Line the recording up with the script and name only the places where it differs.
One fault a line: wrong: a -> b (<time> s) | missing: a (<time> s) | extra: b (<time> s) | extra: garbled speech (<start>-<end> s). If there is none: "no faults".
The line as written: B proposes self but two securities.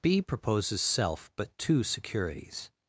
no faults